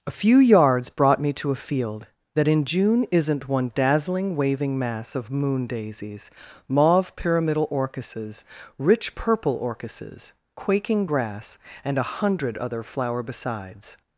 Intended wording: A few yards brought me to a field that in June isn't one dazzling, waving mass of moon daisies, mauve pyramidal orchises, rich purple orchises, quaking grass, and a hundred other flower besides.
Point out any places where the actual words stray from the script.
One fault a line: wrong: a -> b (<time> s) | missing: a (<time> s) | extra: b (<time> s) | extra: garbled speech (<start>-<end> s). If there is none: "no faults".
no faults